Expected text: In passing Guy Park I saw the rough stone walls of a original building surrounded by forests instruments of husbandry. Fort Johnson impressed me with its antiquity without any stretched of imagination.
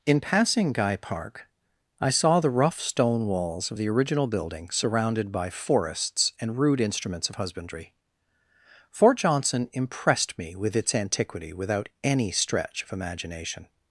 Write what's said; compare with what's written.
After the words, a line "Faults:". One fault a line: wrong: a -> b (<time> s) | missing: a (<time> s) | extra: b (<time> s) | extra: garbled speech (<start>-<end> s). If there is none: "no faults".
In passing Guy Park I saw the rough stone walls of the original building surrounded by forests and rude instruments of husbandry. Fort Johnson impressed me with its antiquity without any stretch of imagination.
Faults:
wrong: a -> the (3.8 s)
extra: and rude (6.4 s)
wrong: stretched -> stretch (12.3 s)